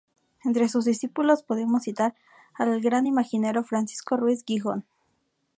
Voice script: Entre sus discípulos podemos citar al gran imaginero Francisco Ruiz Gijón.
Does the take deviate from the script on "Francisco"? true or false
false